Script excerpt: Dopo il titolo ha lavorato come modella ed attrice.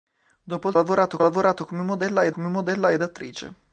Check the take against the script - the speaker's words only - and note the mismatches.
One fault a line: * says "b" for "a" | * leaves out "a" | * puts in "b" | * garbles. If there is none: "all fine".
* says "lavorato" for "titolo"
* puts in "come modella ed"